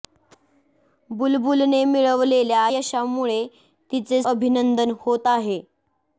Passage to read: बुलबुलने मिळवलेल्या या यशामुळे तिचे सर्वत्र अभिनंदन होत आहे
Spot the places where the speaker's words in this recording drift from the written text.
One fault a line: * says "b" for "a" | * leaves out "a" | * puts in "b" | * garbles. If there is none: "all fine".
* leaves out "या"
* leaves out "सर्वत्र"